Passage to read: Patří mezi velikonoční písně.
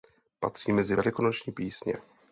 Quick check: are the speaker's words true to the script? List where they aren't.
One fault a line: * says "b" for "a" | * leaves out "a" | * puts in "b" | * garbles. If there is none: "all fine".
all fine